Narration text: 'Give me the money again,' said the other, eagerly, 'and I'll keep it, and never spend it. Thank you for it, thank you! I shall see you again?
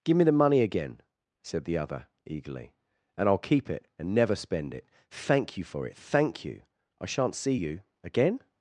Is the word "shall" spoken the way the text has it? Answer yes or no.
no